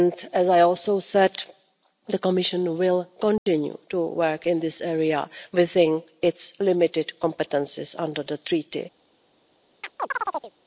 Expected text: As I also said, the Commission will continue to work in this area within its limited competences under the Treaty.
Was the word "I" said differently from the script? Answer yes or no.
no